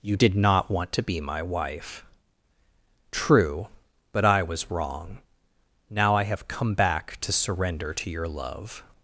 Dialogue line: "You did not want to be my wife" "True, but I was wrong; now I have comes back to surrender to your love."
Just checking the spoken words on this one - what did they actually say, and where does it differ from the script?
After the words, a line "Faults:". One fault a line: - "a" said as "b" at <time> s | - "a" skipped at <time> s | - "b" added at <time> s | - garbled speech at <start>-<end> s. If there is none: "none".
"You did not want to be my wife" "True, but I was wrong; now I have come back to surrender to your love."
Faults:
- "comes" said as "come" at 6.5 s